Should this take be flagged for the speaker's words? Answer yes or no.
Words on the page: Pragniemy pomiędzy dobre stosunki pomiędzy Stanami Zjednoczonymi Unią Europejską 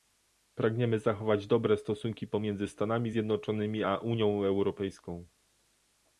yes